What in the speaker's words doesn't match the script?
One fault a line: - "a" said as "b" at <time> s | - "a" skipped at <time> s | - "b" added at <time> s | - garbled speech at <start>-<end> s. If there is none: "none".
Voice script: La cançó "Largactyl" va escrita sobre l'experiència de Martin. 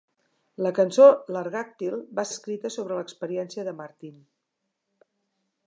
none